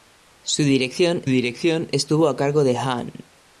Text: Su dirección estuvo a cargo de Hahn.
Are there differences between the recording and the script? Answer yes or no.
yes